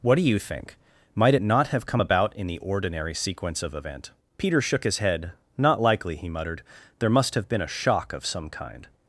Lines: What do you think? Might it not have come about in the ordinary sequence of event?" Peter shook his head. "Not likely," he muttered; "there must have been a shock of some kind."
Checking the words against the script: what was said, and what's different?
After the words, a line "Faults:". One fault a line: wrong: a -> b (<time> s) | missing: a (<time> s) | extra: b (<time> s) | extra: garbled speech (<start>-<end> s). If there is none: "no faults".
What do you think? Might it not have come about in the ordinary sequence of event?" Peter shook his head. "Not likely," he muttered; "there must have been a shock of some kind."
Faults:
no faults